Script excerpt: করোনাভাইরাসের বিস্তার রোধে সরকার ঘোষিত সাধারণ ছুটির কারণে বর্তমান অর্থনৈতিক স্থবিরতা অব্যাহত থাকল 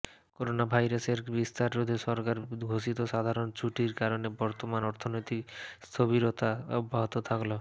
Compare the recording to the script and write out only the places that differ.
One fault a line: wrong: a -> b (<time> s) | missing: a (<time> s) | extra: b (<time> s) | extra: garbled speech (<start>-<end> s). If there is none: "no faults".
no faults